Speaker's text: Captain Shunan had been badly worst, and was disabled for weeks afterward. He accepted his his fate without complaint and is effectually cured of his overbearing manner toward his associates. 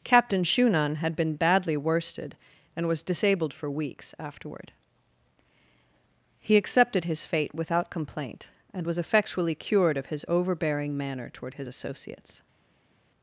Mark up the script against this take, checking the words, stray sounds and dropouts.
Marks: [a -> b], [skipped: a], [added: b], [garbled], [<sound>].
Captain Shunan had been badly [worst, -> worsted] and was disabled for weeks afterward. He accepted his [skipped: his] fate without complaint and [is -> was] effectually cured of his overbearing manner toward his associates.